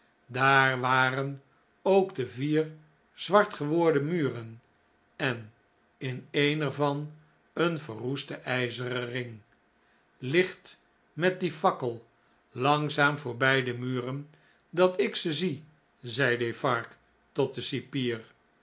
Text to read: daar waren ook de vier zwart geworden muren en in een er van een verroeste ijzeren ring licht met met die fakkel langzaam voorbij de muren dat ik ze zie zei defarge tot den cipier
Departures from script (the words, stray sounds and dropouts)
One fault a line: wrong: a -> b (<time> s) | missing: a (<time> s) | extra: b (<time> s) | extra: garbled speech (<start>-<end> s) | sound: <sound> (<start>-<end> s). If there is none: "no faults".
missing: met (11.4 s)